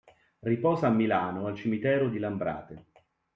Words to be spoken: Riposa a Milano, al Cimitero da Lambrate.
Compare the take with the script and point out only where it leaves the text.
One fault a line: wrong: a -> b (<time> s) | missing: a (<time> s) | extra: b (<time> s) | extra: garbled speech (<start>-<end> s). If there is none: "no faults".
wrong: da -> di (2.1 s)